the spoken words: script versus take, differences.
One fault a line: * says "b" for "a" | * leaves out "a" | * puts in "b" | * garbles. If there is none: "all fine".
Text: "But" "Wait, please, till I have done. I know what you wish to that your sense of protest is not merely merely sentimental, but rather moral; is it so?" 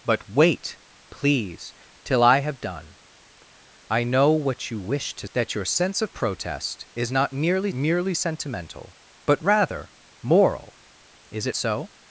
all fine